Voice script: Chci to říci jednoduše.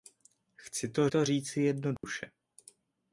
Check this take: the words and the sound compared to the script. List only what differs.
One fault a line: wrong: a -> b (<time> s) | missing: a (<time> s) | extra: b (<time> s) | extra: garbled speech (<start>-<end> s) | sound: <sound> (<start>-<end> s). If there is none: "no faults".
extra: to (1.1 s)
sound: dropout (2.0-2.0 s)